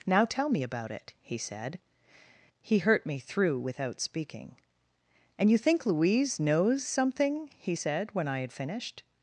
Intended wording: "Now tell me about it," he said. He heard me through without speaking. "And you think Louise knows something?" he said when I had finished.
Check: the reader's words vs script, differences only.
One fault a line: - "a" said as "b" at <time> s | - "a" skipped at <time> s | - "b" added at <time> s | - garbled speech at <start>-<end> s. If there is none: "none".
- "heard" said as "hurt" at 2.8 s